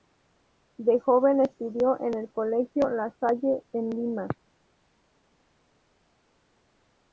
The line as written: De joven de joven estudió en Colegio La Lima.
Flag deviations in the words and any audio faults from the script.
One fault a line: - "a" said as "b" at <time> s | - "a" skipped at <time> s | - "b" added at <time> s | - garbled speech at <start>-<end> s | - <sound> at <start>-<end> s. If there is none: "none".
- "de joven" skipped at 1.4 s
- "el" added at 2.2 s
- "Salle en" added at 3.2 s